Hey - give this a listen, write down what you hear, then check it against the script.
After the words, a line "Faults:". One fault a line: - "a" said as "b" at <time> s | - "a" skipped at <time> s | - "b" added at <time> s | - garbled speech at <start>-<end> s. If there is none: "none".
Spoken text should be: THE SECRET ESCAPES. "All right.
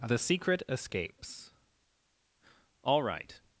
THE SECRET ESCAPES. "All right.
Faults:
none